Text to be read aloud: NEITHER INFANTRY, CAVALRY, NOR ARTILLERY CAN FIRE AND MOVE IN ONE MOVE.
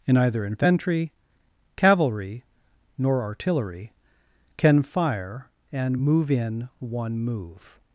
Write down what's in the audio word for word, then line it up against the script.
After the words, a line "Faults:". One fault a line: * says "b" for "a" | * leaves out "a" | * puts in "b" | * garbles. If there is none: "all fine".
In either INFANTRY, CAVALRY, NOR ARTILLERY CAN FIRE AND MOVE IN ONE MOVE.
Faults:
* says "In either" for "NEITHER"